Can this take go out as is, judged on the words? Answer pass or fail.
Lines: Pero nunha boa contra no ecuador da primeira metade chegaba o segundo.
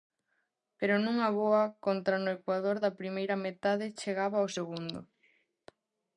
pass